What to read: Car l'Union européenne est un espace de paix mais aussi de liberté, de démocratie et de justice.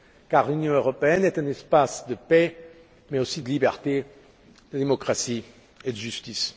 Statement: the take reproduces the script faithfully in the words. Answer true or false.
true